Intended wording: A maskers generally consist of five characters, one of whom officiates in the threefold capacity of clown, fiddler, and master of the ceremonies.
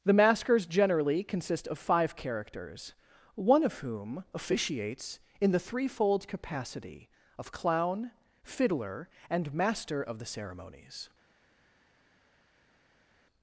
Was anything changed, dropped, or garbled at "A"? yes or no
yes